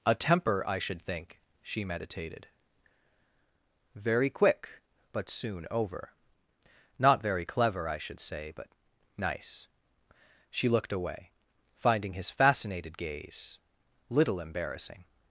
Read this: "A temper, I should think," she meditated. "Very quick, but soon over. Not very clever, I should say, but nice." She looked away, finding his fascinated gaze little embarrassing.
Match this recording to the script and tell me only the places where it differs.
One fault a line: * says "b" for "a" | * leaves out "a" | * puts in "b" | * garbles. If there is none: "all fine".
all fine